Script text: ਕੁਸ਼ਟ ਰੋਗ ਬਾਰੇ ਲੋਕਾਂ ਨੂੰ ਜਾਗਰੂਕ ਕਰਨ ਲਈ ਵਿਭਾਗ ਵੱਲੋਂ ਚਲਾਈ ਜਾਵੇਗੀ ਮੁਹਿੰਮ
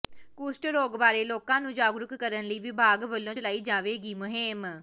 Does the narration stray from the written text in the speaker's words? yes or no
no